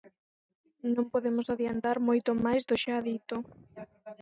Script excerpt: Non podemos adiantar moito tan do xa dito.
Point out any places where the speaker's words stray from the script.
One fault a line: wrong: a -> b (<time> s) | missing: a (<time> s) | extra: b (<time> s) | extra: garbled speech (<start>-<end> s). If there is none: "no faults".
wrong: tan -> máis (2.5 s)